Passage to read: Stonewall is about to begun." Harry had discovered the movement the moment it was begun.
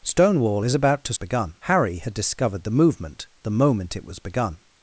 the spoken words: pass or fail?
pass